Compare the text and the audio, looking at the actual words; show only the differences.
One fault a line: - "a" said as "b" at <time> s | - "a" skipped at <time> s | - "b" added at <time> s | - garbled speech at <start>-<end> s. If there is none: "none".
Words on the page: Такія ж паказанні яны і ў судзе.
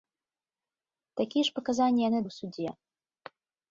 none